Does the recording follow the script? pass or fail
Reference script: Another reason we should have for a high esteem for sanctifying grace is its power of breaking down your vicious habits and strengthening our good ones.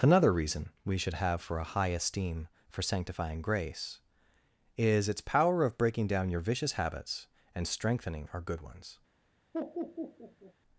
pass